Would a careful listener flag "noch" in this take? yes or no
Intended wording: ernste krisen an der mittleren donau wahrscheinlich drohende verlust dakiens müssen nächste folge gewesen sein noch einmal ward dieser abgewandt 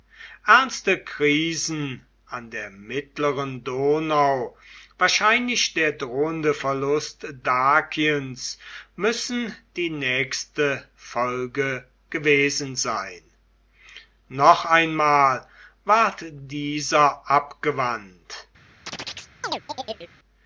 no